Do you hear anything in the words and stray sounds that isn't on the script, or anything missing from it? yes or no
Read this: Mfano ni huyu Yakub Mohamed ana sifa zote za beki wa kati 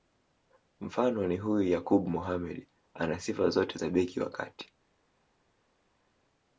no